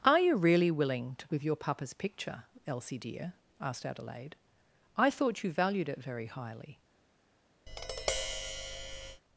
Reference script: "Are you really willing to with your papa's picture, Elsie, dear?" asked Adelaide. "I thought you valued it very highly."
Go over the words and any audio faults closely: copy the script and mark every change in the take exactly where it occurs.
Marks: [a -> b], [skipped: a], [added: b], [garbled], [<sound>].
"Are you really willing to with your papa's picture, Elsie, dear?" asked Adelaide. "I thought you valued it very highly." [tap]